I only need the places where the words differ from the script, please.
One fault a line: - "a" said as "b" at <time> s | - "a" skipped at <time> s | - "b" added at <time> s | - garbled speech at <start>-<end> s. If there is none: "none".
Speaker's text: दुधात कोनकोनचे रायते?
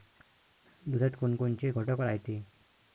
- "घटक" added at 1.7 s